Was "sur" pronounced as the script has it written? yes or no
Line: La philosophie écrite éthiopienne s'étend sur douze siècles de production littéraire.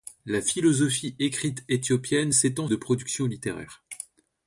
no